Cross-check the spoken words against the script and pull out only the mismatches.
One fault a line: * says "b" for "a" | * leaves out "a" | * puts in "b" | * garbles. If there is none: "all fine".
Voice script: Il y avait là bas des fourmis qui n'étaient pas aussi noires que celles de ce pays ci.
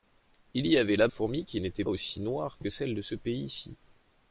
* leaves out "bas des"
* leaves out "pas"